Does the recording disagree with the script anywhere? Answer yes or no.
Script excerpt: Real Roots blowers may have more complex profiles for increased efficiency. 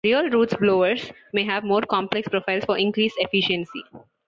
no